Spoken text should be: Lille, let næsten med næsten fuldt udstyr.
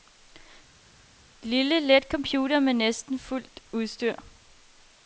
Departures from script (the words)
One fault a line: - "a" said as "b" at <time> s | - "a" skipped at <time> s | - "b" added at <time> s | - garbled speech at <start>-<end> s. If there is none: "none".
- "næsten" said as "computer" at 2.1 s